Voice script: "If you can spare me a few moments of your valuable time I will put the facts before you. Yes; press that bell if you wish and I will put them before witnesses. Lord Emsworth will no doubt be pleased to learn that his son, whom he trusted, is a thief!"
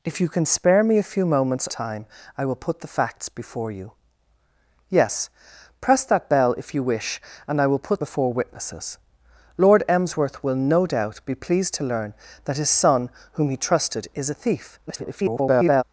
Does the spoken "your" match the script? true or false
false